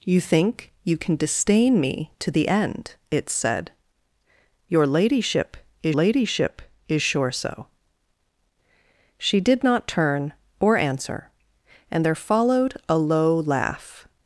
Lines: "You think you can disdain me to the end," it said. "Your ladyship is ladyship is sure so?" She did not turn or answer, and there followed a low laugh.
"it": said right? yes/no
yes